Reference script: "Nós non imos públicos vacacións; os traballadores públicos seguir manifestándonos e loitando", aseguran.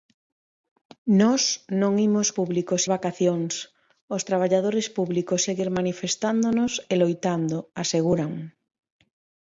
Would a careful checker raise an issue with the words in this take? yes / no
no